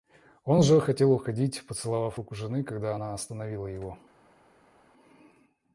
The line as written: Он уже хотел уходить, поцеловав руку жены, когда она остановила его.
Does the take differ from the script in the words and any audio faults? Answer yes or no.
no